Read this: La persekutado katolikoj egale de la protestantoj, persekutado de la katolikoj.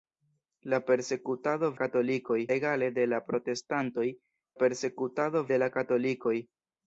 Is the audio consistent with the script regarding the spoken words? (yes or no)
yes